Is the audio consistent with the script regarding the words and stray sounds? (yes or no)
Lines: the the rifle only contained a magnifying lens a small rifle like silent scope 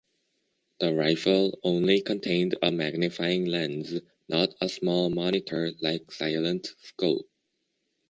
no